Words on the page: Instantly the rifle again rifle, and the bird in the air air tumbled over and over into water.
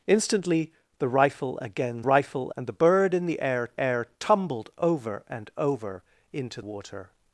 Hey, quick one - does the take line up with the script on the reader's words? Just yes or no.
yes